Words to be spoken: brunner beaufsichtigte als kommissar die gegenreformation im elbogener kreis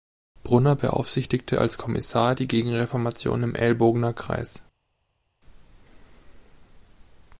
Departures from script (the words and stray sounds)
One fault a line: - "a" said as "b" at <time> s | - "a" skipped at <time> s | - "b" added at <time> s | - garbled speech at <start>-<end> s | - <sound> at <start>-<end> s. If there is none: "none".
none